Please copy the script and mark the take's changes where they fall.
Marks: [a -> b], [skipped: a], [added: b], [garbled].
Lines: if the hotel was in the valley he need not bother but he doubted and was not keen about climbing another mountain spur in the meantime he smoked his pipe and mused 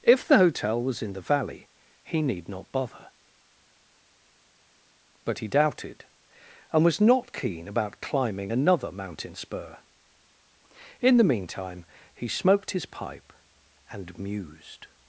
if the hotel was in the valley he need not bother but he doubted and was not keen about climbing another mountain spur in the meantime he smoked his pipe and mused